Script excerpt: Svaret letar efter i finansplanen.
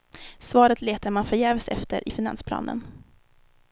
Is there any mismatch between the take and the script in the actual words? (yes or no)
yes